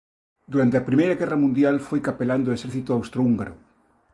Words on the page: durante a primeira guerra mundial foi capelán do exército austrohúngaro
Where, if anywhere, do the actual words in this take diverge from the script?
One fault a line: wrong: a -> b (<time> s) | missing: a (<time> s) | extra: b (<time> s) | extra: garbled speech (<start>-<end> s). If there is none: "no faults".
no faults